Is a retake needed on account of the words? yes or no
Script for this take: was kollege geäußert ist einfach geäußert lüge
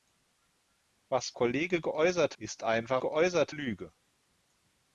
no